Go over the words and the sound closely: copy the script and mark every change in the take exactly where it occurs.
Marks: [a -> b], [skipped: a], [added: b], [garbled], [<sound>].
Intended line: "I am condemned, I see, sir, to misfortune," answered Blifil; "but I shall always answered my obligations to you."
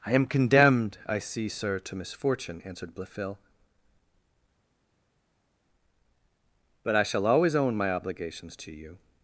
"I am condemned, I see, sir, to misfortune," answered Blifil; "but I shall always [answered -> own] my obligations to you."